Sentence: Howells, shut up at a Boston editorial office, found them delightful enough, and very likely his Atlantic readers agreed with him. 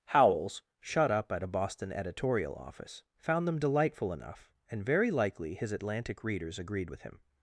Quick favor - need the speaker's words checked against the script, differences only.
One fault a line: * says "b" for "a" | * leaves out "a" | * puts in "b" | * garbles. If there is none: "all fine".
all fine